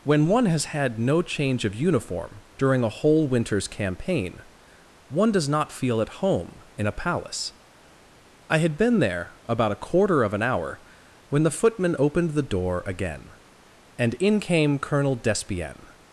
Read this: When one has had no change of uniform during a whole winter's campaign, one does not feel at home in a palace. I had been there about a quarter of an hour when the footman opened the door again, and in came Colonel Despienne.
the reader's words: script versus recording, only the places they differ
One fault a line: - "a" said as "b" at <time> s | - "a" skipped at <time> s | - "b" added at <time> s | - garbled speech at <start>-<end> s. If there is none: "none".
none